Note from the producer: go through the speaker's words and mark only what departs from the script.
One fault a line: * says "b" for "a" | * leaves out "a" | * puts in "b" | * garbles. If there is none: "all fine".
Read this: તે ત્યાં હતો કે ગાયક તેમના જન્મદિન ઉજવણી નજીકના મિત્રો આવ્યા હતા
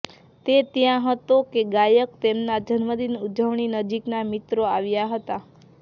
all fine